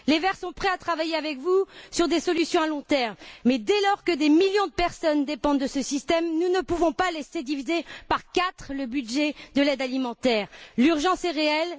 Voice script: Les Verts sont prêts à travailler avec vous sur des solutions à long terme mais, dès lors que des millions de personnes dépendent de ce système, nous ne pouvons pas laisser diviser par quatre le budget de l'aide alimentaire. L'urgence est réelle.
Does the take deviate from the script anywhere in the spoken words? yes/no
no